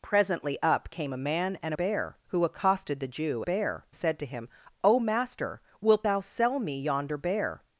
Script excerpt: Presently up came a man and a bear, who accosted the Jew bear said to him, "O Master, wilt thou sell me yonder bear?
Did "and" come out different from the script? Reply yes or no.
no